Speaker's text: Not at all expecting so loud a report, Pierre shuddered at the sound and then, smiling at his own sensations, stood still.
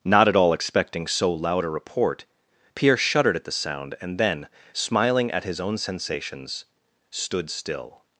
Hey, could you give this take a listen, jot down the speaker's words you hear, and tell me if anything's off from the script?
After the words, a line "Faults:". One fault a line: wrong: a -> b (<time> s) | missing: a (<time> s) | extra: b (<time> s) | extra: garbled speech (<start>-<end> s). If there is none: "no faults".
Not at all expecting so loud a report, Pierre shuddered at the sound and then, smiling at his own sensations, stood still.
Faults:
no faults